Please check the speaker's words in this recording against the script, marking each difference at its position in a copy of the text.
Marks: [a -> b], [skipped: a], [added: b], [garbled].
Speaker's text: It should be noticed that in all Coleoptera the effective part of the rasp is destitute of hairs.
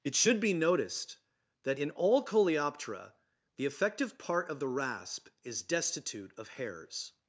It should be noticed that in all Coleoptera the effective part of the rasp is destitute of hairs.